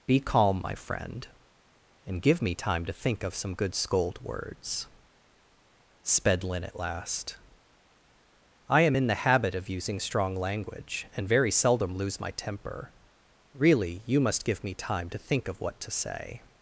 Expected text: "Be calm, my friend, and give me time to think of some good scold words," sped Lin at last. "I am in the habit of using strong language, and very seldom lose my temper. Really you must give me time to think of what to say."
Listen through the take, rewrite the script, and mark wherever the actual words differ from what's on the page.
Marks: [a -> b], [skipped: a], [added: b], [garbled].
"Be calm, my friend, and give me time to think of some good scold words," sped Lin at last. "I am in the habit of using strong language, and very seldom lose my temper. Really you must give me time to think of what to say."